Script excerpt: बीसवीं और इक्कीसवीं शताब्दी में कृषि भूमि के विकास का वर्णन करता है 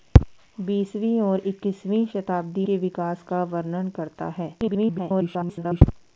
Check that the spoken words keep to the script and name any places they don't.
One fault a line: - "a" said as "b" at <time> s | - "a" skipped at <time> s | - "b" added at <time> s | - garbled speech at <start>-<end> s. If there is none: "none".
- "में कृषि भूमि" skipped at 2.7 s
- garbled speech at 4.6-5.8 s